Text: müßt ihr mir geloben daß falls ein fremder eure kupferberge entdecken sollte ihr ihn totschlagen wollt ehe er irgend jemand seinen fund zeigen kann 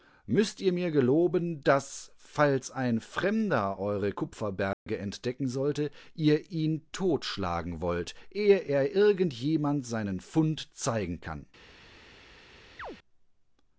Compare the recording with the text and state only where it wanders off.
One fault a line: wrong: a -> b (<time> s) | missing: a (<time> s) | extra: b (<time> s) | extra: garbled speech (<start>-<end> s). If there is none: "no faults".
no faults